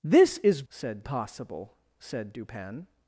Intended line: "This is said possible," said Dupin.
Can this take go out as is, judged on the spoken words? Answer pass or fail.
pass